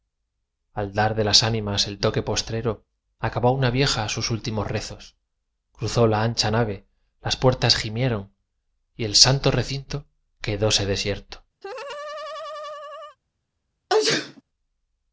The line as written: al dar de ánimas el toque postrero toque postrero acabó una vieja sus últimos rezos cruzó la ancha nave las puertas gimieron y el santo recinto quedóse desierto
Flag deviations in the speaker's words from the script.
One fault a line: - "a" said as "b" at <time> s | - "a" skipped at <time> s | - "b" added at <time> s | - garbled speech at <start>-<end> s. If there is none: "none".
- "las" added at 1.2 s
- "toque postrero" skipped at 2.8 s